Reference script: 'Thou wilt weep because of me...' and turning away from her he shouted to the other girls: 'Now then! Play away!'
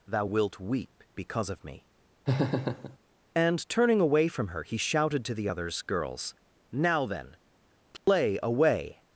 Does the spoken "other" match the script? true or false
false